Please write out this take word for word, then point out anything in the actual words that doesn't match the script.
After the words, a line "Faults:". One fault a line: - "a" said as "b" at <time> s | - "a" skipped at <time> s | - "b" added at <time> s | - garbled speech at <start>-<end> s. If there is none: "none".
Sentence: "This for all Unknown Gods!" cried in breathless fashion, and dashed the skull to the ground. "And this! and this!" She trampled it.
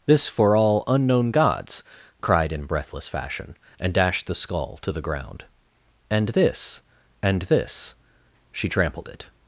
"This for all Unknown Gods!" cried in breathless fashion, and dashed the skull to the ground. "And this! and this!" She trampled it.
Faults:
none